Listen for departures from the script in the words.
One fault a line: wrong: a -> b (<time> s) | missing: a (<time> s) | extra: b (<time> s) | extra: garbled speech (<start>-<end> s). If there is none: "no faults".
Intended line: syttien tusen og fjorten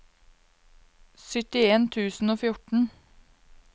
no faults